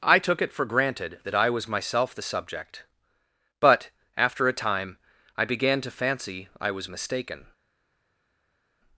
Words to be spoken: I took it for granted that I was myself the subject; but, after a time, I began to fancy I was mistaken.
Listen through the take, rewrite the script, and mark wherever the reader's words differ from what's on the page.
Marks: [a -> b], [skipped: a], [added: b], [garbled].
I took it for granted that I was myself the subject; but, after a time, I began to fancy I was mistaken.